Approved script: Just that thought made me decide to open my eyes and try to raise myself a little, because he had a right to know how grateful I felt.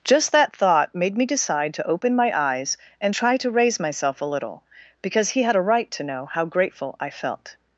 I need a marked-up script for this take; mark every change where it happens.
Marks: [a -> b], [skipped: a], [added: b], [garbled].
Just that thought made me decide to open my eyes and try to raise myself a little, because he had a right to know how grateful I felt.